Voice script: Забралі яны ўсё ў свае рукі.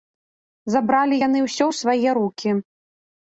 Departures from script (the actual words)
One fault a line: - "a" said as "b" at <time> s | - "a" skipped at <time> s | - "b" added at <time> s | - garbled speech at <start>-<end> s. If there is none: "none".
none